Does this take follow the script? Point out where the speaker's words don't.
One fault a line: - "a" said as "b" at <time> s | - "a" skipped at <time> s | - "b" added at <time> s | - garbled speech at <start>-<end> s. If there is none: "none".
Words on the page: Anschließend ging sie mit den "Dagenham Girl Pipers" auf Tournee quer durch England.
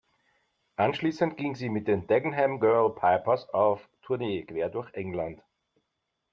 none